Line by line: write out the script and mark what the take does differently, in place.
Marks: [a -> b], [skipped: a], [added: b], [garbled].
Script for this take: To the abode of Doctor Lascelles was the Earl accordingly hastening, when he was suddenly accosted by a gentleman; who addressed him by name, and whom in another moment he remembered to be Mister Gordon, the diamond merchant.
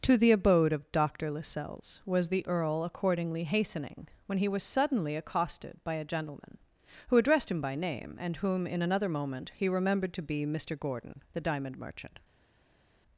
To the abode of Doctor Lascelles was the Earl accordingly hastening, when he was suddenly accosted by a gentleman; who addressed him by name, and whom in another moment he remembered to be Mister Gordon, the diamond merchant.